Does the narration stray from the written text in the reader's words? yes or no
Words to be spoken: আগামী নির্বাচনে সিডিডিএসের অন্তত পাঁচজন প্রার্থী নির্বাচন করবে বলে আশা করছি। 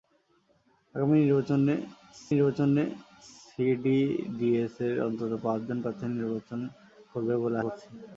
yes